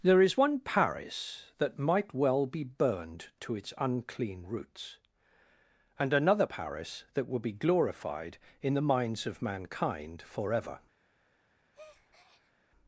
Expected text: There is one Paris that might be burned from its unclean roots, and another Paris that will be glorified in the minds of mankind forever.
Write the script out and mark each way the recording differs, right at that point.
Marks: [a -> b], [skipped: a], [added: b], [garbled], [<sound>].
There is one Paris that might [added: well] be burned [from -> to] its unclean roots, and another Paris that will be glorified in the minds of mankind forever. [breath]